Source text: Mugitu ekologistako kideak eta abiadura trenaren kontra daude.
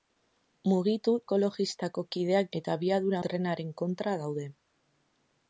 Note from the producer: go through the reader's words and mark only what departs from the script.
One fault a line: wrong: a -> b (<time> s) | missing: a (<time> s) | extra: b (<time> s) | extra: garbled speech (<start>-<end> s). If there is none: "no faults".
no faults